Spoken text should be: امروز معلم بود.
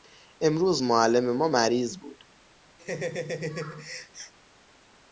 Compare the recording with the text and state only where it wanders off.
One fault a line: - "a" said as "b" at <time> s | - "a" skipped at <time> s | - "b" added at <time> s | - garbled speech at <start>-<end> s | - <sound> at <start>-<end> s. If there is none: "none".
- "ما مریض" added at 1.4 s
- laugh at 2.8-4.3 s